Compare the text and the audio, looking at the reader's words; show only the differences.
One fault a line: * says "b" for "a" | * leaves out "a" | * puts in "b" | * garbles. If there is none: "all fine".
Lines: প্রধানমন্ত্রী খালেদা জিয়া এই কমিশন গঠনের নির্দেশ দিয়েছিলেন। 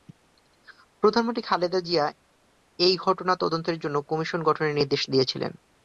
* puts in "ঘটনা তদন্তের জন্য"